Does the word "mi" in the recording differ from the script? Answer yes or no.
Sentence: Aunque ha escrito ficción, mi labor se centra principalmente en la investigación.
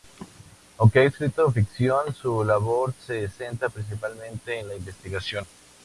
yes